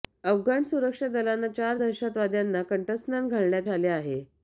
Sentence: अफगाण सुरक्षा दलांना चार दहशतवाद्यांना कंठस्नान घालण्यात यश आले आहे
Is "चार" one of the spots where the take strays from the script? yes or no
no